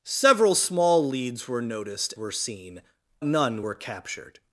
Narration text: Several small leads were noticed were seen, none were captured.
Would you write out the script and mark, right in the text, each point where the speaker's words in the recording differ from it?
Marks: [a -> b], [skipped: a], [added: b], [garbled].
Several small leads were noticed were seen, none were captured.